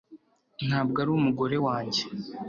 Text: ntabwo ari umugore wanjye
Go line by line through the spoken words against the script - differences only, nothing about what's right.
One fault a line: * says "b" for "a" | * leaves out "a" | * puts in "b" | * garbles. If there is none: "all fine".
all fine